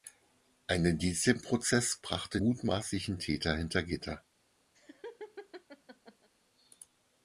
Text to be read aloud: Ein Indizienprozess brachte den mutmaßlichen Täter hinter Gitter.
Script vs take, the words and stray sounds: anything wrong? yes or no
yes